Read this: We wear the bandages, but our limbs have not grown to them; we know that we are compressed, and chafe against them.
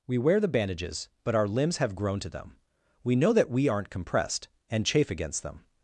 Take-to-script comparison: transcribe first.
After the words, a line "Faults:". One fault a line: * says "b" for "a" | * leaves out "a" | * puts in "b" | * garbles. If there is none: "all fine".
We wear the bandages, but our limbs have grown to them; we know that we aren't compressed, and chafe against them.
Faults:
* leaves out "not"
* says "aren't" for "are"